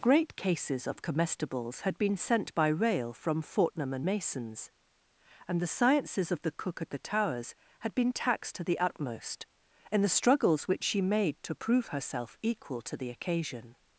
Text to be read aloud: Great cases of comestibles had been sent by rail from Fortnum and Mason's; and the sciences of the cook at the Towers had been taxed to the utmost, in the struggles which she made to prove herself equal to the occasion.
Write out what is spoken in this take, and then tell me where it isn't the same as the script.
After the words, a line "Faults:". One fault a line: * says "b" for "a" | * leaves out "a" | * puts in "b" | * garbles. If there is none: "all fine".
Great cases of comestibles had been sent by rail from Fortnum and Mason's; and the sciences of the cook at the Towers had been taxed to the utmost, in the struggles which she made to prove herself equal to the occasion.
Faults:
all fine